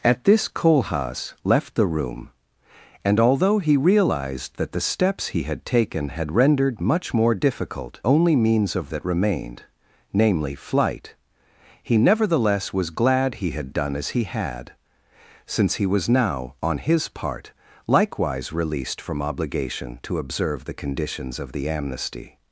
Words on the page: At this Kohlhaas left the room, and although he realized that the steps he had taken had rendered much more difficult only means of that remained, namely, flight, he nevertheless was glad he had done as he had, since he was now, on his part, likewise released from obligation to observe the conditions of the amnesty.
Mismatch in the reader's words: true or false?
false